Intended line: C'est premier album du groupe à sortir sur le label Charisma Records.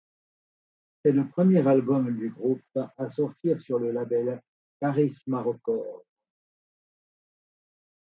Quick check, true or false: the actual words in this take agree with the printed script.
false